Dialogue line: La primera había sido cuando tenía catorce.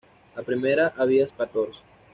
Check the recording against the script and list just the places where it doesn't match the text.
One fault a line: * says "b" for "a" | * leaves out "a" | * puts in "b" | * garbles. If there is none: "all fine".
* leaves out "sido cuando tenía"